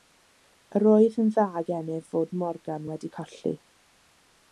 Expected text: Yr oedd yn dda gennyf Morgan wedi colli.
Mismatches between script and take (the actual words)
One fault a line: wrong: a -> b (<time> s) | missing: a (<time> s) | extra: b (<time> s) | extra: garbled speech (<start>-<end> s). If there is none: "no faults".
extra: fod (2.1 s)